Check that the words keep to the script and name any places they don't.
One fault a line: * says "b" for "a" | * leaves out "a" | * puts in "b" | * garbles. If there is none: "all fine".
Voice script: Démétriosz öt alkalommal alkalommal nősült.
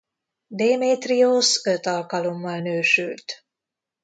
* leaves out "alkalommal"